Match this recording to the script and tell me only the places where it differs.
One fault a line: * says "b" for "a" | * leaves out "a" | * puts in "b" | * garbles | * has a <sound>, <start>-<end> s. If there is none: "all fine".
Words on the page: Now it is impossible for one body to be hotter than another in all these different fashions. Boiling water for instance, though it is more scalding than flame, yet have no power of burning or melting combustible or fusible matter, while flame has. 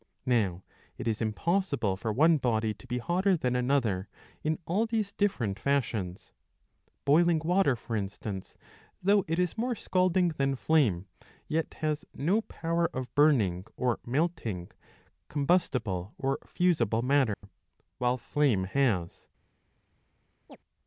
* says "has" for "have"
* has a dropout, 17.3-17.4 s
* has a chirp, 20.5-20.6 s